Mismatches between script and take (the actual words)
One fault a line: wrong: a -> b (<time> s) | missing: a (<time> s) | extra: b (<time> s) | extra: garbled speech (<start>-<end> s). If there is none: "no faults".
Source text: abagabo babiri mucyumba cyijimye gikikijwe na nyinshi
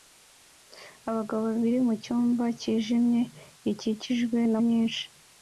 no faults